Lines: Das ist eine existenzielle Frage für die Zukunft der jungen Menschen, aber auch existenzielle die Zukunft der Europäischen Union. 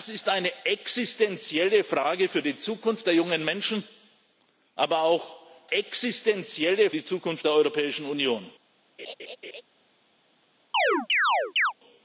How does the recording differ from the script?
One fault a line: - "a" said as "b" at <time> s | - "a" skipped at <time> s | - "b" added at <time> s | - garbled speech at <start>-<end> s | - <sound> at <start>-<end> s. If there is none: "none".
- laugh at 9.0-9.6 s
- chirp at 10.7-11.7 s